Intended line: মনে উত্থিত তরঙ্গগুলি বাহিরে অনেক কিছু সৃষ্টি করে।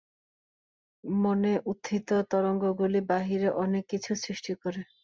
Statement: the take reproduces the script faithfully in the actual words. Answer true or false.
true